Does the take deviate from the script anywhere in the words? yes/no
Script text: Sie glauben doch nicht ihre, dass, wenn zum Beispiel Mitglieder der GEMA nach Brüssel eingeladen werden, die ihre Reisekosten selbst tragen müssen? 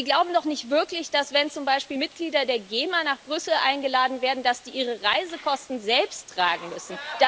yes